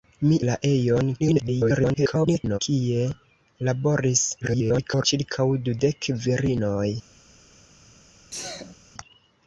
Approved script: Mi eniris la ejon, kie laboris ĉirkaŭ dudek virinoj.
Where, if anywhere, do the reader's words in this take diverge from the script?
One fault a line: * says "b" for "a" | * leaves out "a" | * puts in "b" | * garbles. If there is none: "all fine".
* leaves out "eniris"
* garbles
* garbles